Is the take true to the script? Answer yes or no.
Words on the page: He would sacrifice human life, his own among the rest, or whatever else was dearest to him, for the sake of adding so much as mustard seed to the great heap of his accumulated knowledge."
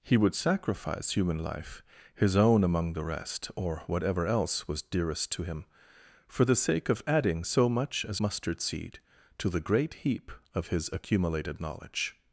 yes